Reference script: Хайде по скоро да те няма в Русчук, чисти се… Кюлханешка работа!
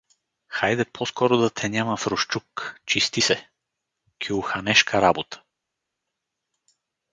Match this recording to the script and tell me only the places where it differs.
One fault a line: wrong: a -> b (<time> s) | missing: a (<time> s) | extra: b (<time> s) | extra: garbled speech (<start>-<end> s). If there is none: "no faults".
no faults